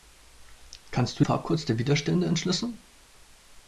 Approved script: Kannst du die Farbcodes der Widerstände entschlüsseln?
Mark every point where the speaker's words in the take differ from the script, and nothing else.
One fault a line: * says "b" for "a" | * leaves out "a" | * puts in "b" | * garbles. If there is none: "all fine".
* leaves out "die"